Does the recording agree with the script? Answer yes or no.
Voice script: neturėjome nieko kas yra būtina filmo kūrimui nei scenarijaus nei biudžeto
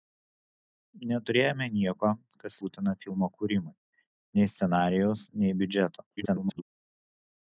no